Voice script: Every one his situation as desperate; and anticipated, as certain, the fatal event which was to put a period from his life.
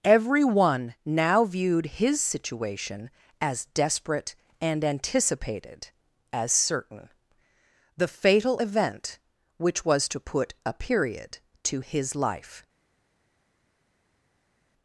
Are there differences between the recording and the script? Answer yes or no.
yes